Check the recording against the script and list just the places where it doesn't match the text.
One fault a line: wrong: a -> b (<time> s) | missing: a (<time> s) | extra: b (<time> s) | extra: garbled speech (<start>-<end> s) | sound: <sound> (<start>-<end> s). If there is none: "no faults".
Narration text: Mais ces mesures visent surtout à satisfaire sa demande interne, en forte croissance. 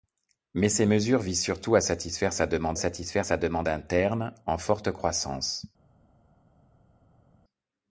extra: satisfaire sa demande (2.8 s)